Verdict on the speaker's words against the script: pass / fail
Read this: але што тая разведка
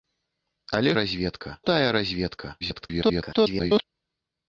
fail